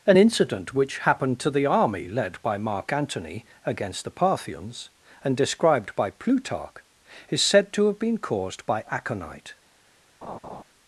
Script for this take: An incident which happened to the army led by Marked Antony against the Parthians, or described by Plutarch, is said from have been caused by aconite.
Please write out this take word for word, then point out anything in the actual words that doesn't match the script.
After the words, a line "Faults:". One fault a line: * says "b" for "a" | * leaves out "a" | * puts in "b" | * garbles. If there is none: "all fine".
An incident which happened to the army led by Mark Antony against the Parthians, and described by Plutarch, is said to have been caused by aconite.
Faults:
* says "Mark" for "Marked"
* says "and" for "or"
* says "to" for "from"